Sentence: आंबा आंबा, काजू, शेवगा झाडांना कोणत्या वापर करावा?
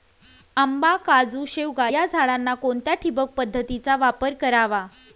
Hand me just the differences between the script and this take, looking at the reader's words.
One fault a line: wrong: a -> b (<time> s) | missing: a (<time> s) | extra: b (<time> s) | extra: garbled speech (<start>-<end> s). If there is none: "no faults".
missing: आंबा (0.9 s)
extra: या (1.8 s)
extra: ठिबक पद्धतीचा (2.9 s)